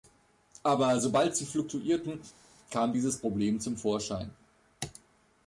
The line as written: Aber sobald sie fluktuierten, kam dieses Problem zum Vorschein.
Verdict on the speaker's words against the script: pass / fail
pass